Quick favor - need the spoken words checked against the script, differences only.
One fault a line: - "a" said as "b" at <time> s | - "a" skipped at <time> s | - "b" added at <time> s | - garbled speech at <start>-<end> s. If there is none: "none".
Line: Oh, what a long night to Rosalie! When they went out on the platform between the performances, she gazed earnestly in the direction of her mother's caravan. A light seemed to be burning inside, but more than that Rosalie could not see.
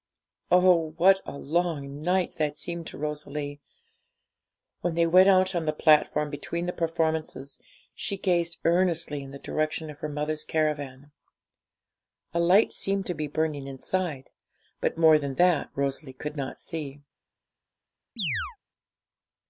- "that seemed" added at 2.4 s